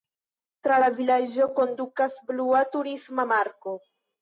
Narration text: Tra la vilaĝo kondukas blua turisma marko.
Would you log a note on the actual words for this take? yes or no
no